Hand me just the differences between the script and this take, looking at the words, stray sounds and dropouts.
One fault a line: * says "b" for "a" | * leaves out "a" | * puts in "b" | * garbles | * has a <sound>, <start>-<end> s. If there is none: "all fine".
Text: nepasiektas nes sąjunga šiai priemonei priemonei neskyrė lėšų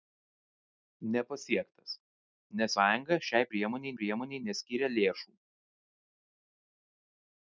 all fine